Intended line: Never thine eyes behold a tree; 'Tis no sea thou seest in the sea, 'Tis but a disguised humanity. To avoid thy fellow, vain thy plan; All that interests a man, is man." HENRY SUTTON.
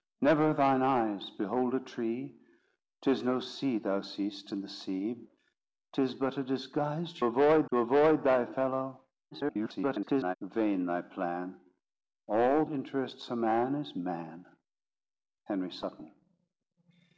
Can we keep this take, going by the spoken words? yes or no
no